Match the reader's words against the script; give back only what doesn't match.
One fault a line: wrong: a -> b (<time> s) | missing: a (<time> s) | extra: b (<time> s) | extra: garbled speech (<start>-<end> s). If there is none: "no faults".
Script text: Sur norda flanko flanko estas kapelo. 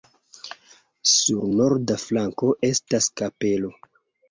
missing: flanko (2.5 s)